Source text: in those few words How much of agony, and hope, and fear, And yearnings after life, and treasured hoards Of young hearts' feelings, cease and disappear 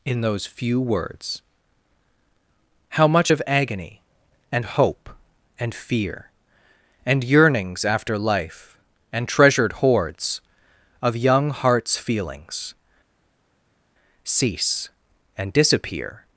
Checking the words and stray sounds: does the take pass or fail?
pass